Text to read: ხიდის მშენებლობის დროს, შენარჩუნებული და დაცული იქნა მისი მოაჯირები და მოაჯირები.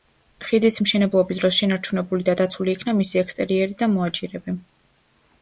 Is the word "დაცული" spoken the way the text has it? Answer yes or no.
yes